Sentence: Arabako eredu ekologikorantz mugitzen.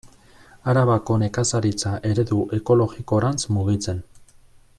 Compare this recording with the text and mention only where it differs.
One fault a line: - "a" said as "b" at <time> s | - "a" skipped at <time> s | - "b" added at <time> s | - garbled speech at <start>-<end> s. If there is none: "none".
- "nekazaritza" added at 1.2 s